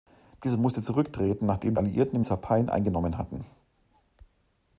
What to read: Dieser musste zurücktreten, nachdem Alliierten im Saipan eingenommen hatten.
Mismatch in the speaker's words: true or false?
false